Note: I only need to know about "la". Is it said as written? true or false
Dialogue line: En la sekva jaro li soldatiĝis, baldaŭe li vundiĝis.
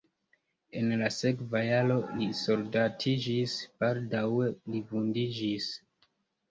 true